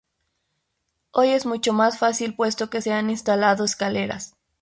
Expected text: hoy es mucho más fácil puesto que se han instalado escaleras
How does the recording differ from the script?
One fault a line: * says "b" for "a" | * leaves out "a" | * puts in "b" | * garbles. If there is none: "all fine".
all fine